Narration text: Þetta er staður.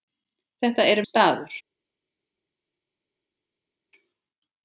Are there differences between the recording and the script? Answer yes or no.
no